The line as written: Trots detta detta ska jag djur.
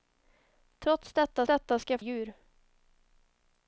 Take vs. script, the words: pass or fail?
pass